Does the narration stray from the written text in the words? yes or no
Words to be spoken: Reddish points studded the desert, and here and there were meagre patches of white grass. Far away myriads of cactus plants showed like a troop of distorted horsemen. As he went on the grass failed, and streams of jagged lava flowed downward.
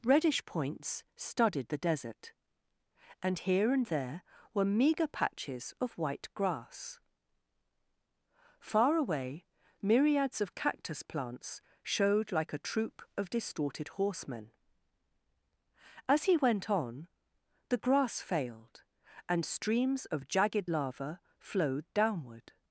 no